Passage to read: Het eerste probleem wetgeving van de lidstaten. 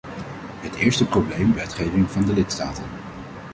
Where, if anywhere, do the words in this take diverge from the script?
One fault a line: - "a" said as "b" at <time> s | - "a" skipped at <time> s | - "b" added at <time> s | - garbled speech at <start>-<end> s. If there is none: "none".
none